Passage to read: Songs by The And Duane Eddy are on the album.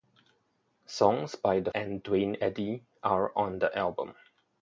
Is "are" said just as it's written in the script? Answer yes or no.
yes